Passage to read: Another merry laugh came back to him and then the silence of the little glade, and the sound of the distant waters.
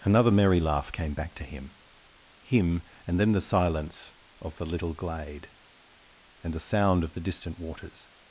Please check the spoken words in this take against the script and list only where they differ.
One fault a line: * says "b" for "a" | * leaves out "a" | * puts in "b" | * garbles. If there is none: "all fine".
* puts in "him"